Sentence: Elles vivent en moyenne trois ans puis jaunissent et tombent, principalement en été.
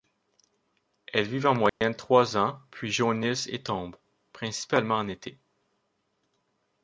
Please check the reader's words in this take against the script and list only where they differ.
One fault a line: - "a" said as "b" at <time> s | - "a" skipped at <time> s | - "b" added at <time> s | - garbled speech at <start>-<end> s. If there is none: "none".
none